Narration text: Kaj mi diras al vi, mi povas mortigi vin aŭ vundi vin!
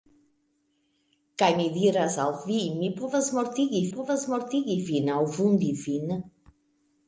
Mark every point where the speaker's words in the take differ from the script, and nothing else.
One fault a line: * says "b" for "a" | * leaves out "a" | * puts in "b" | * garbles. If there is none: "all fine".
* puts in "povas mortigi"